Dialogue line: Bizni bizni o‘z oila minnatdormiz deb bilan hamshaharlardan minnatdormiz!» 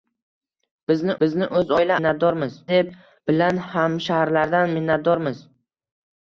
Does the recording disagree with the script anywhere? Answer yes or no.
no